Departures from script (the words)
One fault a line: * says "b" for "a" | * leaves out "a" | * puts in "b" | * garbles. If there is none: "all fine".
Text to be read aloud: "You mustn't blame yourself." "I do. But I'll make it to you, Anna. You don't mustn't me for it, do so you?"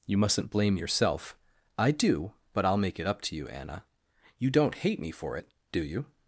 * puts in "up"
* says "hate" for "mustn't"
* leaves out "so"